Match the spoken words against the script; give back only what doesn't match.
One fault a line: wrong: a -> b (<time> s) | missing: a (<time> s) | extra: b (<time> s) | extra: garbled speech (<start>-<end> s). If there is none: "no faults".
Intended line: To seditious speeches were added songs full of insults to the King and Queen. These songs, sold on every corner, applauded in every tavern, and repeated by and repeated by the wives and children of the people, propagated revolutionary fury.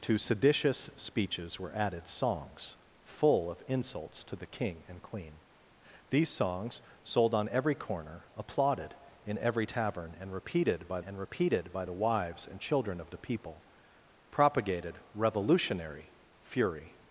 no faults